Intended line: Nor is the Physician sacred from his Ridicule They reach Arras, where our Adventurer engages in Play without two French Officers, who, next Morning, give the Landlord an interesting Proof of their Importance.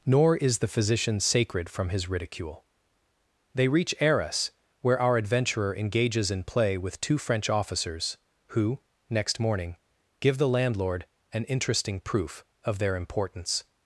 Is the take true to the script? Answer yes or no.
no